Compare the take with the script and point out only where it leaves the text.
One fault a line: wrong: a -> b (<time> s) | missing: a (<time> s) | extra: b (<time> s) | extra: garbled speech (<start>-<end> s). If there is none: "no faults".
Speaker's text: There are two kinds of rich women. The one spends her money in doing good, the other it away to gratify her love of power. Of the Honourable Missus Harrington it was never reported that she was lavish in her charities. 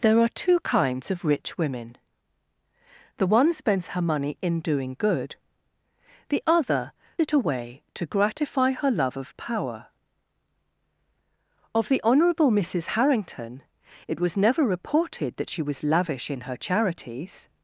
no faults